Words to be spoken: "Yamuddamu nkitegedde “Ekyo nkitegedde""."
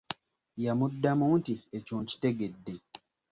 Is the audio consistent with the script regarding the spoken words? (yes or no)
no